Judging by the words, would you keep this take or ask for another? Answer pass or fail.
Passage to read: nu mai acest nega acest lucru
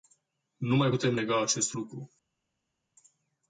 fail